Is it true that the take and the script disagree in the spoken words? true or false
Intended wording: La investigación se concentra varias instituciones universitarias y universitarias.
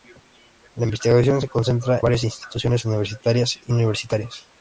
false